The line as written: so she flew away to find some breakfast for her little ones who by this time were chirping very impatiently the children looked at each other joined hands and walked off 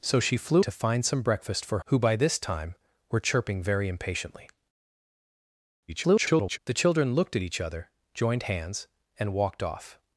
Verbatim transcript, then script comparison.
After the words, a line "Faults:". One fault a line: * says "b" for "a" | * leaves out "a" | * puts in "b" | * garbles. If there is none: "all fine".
so she flew to find some breakfast for who by this time were chirping very impatiently [garbled] the children looked at each other joined hands and walked off
Faults:
* leaves out "away"
* leaves out "her little ones"
* garbles